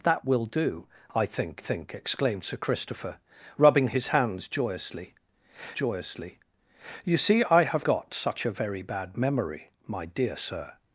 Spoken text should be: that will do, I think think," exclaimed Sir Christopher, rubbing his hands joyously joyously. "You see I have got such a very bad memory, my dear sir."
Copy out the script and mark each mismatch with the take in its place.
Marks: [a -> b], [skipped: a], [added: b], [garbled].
that will do, I think think," exclaimed Sir Christopher, rubbing his hands joyously joyously. "You see I have got such a very bad memory, my dear sir."